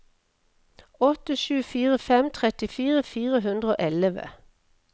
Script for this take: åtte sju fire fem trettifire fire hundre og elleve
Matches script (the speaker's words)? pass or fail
pass